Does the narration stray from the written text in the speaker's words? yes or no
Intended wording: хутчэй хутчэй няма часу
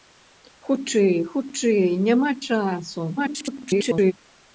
yes